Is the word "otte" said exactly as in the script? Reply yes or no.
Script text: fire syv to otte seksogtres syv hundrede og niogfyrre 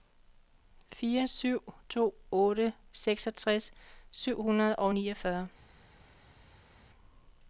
yes